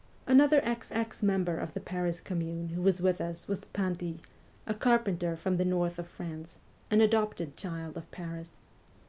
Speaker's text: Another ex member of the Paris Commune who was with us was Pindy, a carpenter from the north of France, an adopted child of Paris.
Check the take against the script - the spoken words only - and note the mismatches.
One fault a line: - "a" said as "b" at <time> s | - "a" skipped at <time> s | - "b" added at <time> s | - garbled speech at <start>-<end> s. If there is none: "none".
- "ex" added at 0.9 s